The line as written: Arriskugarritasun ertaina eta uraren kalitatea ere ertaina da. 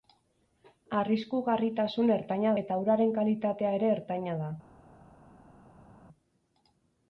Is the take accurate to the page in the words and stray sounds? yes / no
yes